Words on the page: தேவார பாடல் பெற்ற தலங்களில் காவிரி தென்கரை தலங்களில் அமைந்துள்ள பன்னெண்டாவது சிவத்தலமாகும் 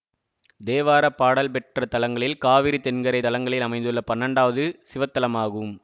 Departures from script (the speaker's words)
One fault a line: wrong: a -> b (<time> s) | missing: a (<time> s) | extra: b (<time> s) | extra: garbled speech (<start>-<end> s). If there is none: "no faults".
no faults